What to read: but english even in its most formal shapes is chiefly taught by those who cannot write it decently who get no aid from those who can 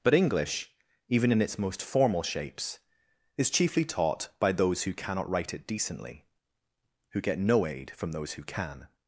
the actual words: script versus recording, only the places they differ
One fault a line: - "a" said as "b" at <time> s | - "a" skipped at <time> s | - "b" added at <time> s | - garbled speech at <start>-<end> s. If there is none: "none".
none